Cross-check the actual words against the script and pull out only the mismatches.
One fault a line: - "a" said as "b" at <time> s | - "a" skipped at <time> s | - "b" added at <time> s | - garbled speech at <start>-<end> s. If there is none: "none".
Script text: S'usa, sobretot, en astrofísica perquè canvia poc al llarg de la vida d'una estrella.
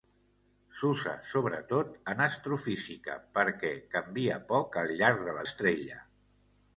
- "vida d'una" skipped at 5.4 s